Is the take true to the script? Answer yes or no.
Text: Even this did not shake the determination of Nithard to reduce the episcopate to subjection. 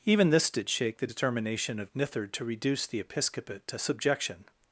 no